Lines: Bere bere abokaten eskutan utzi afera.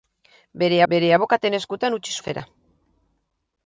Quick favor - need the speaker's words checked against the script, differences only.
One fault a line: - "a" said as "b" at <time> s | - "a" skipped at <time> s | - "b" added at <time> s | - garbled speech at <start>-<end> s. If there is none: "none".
none